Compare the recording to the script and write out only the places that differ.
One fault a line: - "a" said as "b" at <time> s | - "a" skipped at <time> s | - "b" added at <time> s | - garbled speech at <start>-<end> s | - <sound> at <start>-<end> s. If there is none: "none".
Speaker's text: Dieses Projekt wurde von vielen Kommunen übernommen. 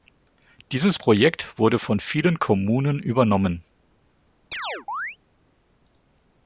- chirp at 4.5-5.2 s